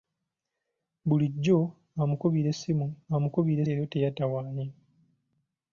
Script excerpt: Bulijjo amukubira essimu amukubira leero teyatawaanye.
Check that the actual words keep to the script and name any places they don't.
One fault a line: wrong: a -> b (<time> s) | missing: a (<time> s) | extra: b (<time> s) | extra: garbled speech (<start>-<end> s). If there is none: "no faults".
no faults